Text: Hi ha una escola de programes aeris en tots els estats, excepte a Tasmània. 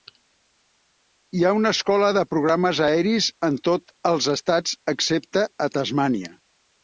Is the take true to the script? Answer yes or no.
yes